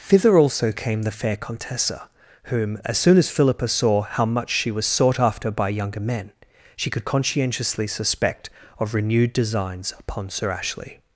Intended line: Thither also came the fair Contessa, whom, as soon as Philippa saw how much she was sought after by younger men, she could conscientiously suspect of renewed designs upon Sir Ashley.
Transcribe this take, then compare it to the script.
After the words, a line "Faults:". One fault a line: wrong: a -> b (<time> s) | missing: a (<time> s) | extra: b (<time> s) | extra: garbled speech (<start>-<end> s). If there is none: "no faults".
Thither also came the fair Contessa, whom, as soon as Philippa saw how much she was sought after by younger men, she could conscientiously suspect of renewed designs upon Sir Ashley.
Faults:
no faults